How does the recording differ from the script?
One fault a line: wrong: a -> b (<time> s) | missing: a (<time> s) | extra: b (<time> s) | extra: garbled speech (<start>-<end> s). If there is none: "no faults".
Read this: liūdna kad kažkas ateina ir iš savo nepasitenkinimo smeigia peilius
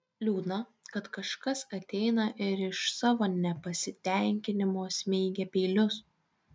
no faults